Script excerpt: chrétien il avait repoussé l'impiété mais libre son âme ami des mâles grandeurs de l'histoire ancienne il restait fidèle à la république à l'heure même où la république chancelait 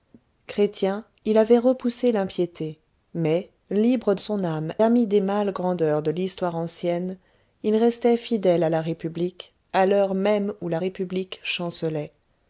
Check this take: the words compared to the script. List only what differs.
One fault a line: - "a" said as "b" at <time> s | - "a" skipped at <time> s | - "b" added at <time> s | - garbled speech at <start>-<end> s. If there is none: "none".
none